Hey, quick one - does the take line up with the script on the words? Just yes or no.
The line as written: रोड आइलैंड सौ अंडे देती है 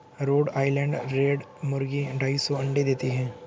no